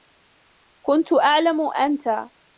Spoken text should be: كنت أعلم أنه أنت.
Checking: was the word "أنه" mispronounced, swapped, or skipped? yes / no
yes